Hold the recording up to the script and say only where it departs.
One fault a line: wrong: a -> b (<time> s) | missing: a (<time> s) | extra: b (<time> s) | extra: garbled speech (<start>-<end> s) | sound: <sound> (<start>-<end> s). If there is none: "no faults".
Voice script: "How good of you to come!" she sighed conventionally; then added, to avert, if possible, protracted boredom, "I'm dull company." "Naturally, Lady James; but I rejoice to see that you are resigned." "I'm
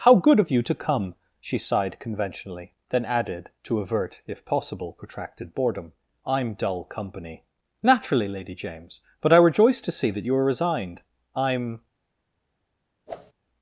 sound: whoosh (13.1-13.3 s)